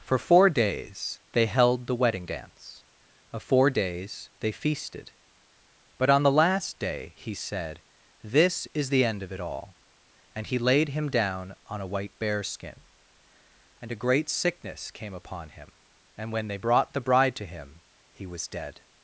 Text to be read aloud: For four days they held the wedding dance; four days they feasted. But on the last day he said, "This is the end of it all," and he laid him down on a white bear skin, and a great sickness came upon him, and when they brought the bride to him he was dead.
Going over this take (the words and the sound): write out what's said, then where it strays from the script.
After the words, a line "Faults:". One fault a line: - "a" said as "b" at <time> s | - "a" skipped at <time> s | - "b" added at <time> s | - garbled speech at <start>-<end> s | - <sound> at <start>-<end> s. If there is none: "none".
For four days they held the wedding dance; of four days they feasted. But on the last day he said, "This is the end of it all," and he laid him down on a white bear skin, and a great sickness came upon him, and when they brought the bride to him he was dead.
Faults:
- "of" added at 3.3 s